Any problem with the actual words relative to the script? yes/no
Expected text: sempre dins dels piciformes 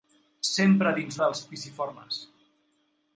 no